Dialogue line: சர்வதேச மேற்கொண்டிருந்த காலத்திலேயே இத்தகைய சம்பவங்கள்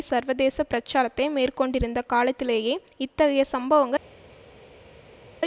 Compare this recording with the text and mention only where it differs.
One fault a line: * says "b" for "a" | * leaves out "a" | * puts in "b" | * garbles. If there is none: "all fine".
* puts in "பிரச்சாரத்தை"